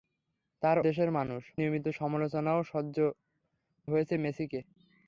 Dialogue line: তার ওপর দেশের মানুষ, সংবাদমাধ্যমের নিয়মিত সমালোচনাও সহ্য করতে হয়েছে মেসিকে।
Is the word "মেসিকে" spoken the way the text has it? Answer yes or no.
yes